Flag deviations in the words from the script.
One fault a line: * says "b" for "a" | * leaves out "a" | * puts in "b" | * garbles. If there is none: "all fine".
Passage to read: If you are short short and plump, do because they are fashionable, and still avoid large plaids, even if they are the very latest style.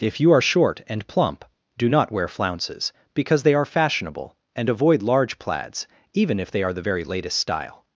* leaves out "short"
* puts in "not wear flounces"
* leaves out "still"